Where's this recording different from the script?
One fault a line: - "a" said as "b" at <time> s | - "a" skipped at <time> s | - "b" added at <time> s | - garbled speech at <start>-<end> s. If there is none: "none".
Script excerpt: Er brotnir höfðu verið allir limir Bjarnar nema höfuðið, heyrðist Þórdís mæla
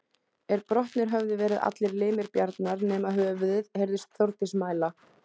none